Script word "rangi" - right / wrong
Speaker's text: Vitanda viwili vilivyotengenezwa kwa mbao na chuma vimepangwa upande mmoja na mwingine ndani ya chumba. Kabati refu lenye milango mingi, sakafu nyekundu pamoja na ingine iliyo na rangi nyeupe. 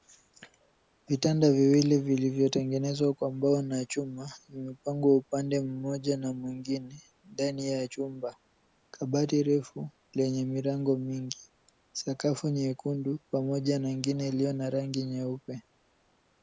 right